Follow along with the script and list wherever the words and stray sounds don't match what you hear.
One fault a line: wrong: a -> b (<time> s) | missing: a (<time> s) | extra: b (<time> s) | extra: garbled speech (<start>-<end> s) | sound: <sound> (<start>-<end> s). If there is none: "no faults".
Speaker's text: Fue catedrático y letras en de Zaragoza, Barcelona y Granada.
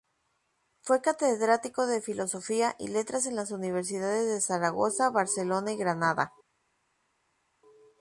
extra: de filosofía (1.9 s)
extra: las Universidades (3.4 s)